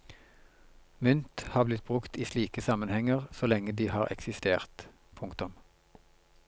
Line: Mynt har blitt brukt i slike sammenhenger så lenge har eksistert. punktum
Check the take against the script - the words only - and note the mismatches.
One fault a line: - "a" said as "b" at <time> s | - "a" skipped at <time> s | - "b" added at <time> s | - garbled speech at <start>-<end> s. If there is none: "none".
- "de" added at 3.7 s